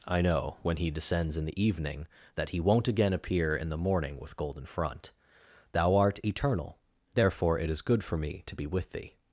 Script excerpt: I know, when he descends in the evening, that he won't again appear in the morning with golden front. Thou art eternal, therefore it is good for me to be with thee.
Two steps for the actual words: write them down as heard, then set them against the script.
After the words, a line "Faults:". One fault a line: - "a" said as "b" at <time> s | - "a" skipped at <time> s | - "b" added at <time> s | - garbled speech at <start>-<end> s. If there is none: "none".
I know, when he descends in the evening, that he won't again appear in the morning with golden front. Thou art eternal, therefore it is good for me to be with thee.
Faults:
none